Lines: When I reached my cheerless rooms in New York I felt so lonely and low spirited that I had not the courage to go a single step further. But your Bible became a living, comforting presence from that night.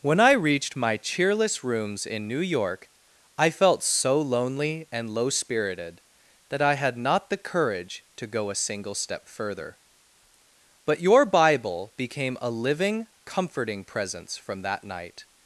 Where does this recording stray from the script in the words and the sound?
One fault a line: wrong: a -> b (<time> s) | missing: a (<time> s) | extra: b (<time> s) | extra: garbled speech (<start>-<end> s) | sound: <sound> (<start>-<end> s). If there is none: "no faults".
no faults